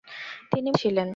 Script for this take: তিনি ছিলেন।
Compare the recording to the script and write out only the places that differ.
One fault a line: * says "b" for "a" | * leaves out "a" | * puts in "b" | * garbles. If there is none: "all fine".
all fine